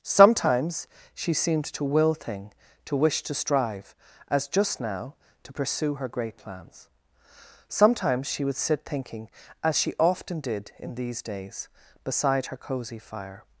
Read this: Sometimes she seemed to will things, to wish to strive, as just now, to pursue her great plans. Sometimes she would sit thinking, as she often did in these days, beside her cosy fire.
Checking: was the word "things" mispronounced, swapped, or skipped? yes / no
yes